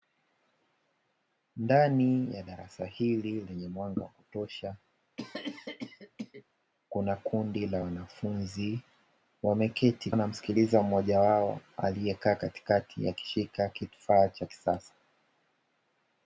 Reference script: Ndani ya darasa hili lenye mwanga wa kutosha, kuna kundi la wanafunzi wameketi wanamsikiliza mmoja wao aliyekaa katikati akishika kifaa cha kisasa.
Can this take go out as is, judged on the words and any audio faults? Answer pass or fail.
fail